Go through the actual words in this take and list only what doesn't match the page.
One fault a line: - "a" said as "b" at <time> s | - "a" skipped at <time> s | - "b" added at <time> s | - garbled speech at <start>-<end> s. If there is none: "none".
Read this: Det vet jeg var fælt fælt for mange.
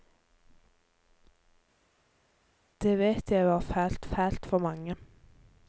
none